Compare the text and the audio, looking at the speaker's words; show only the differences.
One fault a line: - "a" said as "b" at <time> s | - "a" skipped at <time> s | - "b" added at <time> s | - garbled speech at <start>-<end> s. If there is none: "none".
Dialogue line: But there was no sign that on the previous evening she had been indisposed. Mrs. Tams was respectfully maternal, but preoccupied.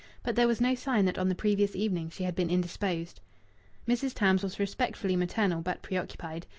none